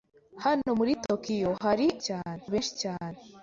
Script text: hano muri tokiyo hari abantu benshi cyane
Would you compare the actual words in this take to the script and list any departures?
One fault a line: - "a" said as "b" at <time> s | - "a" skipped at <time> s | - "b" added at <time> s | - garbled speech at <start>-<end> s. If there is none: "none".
- "abantu" said as "cyane" at 2.1 s